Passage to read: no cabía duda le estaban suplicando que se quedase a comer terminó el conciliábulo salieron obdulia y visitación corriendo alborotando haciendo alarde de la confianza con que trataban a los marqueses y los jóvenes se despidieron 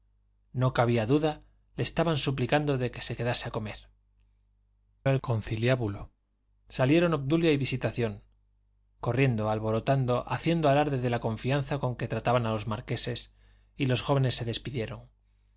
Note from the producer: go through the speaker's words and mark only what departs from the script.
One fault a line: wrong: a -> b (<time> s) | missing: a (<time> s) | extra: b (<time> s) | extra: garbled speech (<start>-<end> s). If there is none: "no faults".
missing: terminó (3.8 s)